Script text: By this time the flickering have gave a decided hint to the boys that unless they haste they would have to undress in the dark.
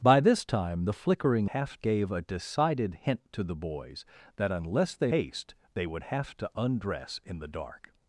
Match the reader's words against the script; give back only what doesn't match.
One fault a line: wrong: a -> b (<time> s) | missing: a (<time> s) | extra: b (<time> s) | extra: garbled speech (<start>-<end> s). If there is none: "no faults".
no faults